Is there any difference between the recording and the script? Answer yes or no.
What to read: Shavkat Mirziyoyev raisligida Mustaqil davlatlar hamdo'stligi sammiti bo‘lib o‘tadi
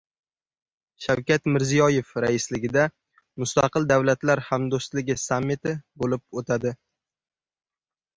no